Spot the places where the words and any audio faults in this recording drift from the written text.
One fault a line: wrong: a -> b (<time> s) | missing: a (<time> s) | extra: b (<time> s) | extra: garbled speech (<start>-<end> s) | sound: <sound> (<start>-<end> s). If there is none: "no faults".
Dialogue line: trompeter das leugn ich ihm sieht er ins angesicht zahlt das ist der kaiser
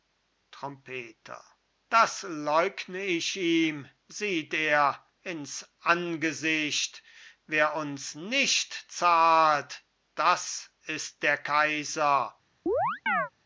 extra: wer uns nicht (7.5 s)
sound: chirp (12.7-13.3 s)